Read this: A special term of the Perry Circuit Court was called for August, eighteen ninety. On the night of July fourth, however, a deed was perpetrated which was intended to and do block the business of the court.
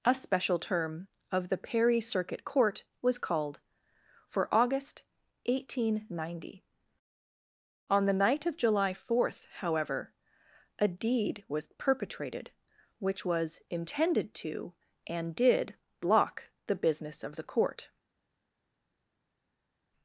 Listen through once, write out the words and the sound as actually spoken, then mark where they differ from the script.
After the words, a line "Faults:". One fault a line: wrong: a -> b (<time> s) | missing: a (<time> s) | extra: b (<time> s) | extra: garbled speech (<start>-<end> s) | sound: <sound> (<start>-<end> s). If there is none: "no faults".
A special term of the Perry Circuit Court was called for August, eighteen ninety. On the night of July fourth, however, a deed was perpetrated which was intended to and did block the business of the court.
Faults:
wrong: do -> did (15.3 s)